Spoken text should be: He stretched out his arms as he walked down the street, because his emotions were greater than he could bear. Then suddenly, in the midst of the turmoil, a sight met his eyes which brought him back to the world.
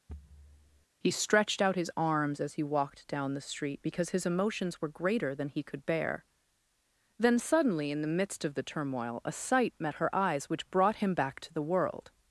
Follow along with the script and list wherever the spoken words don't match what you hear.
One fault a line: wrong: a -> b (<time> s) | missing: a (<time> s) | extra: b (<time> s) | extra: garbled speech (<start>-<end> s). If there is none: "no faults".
wrong: his -> her (10.0 s)